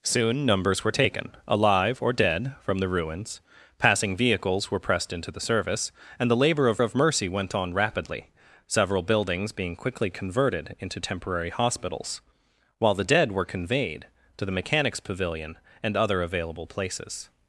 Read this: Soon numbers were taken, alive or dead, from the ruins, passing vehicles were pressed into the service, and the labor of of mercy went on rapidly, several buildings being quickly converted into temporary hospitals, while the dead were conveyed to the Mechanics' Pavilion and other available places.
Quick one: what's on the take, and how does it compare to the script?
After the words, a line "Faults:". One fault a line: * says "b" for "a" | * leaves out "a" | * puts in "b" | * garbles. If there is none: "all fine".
Soon numbers were taken, alive or dead, from the ruins, passing vehicles were pressed into the service, and the labor of of mercy went on rapidly, several buildings being quickly converted into temporary hospitals, while the dead were conveyed to the Mechanics' Pavilion and other available places.
Faults:
all fine